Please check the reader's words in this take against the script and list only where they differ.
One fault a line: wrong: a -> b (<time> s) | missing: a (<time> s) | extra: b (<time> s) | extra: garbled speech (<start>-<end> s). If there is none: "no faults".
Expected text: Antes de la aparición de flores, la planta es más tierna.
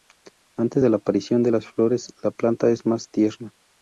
extra: las (1.5 s)